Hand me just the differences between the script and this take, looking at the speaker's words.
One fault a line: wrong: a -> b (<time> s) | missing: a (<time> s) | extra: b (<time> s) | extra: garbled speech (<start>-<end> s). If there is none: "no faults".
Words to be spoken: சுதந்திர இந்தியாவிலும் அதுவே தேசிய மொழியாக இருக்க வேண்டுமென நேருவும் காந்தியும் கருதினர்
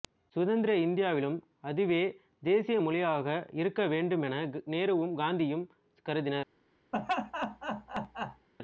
no faults